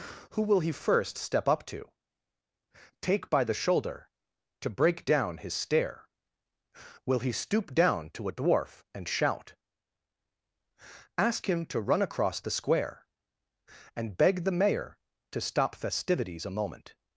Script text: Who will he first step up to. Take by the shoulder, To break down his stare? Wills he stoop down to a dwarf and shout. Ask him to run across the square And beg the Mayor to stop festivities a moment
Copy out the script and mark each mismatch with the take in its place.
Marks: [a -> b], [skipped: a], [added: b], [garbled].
Who will he first step up to. Take by the shoulder, To break down his stare? [Wills -> Will] he stoop down to a dwarf and shout. Ask him to run across the square And beg the Mayor to stop festivities a moment